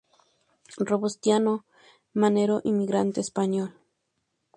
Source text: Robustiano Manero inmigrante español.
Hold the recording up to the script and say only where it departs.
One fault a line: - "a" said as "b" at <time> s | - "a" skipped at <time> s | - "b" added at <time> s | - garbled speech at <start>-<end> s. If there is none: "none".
none